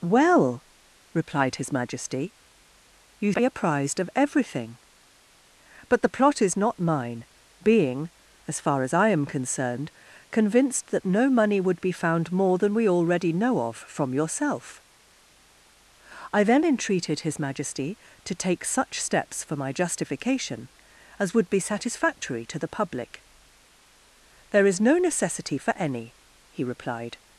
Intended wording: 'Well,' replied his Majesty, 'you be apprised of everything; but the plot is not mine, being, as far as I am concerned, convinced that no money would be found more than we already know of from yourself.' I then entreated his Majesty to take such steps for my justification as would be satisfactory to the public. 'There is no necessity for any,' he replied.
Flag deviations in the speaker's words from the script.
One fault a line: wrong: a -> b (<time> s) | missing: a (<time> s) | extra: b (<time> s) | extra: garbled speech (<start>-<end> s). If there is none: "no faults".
no faults